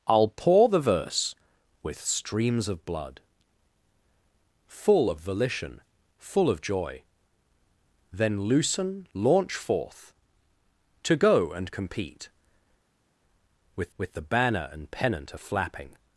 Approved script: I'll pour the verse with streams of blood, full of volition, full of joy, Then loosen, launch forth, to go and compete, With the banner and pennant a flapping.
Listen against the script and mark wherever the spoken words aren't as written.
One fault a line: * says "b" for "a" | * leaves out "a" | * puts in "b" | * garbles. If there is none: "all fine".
* puts in "With"